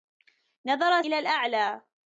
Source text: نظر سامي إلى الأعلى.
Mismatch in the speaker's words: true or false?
true